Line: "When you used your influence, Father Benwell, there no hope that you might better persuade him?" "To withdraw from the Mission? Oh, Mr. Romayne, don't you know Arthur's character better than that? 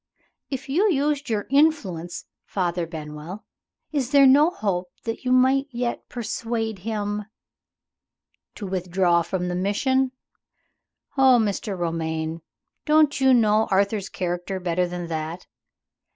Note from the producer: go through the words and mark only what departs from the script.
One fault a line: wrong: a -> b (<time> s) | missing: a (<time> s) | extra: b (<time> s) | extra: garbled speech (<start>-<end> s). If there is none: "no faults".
wrong: When -> If (0.5 s)
extra: is (3.9 s)
wrong: better -> yet (5.7 s)